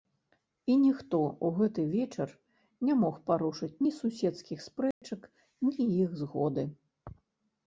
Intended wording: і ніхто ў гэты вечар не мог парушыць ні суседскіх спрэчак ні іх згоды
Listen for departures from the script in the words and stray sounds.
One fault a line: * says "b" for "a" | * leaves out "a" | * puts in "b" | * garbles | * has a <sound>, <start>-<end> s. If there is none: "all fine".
* has a dropout, 4.9-5.0 s